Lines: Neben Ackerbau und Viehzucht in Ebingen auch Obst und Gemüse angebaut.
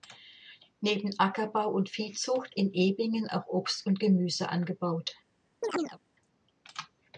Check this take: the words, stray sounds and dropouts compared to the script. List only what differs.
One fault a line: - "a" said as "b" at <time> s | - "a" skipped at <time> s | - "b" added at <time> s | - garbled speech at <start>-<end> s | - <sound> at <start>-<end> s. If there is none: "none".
- chirp at 5.6-6.0 s